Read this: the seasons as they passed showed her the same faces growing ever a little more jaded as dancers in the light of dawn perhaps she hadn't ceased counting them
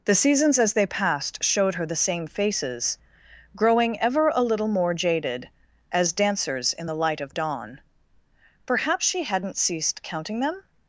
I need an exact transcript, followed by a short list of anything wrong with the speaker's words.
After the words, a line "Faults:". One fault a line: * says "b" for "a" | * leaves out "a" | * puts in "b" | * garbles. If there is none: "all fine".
the seasons as they passed showed her the same faces growing ever a little more jaded as dancers in the light of dawn perhaps she hadn't ceased counting them
Faults:
all fine